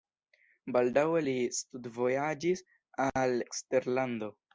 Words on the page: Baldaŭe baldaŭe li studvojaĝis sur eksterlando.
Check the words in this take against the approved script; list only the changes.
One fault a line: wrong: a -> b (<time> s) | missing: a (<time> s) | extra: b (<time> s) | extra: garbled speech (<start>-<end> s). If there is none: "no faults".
missing: baldaŭe (1.2 s)
wrong: sur -> al (3.1 s)